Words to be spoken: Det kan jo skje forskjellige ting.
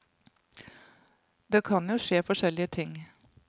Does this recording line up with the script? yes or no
yes